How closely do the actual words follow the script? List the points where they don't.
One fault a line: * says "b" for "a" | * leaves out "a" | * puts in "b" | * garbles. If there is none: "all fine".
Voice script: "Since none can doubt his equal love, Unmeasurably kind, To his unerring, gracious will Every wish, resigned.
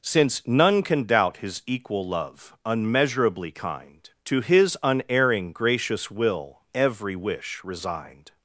all fine